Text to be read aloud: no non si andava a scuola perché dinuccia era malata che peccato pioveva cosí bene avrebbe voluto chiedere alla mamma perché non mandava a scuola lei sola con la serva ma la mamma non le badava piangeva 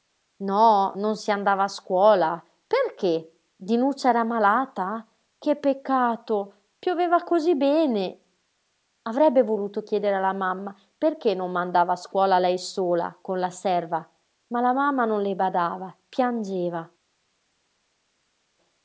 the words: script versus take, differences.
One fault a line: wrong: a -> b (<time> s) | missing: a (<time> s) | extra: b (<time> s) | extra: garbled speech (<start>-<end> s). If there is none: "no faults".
no faults